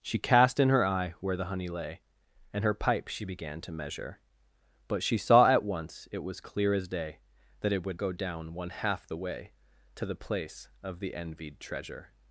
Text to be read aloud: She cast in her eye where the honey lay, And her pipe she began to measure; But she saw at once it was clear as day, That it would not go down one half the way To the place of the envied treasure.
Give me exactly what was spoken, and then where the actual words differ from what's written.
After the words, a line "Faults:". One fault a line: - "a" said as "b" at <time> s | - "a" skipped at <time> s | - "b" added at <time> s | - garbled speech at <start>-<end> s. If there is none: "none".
She cast in her eye where the honey lay, And her pipe she began to measure; But she saw at once it was clear as day, That it would go down one half the way To the place of the envied treasure.
Faults:
- "not" skipped at 8.0 s